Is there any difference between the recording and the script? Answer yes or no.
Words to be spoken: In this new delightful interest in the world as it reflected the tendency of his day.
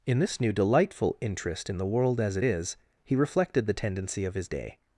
yes